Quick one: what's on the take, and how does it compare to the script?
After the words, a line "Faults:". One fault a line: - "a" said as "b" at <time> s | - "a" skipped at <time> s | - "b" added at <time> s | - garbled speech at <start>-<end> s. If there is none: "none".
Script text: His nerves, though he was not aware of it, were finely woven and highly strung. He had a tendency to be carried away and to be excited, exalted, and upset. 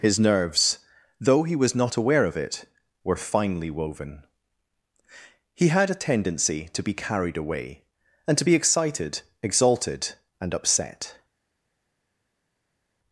His nerves, though he was not aware of it, were finely woven. He had a tendency to be carried away and to be excited, exalted, and upset.
Faults:
- "and highly strung" skipped at 4.2 s